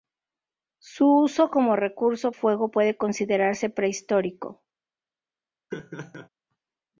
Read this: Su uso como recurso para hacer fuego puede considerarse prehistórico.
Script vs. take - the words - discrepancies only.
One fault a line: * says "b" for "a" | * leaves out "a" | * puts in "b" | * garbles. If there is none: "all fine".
* leaves out "para hacer"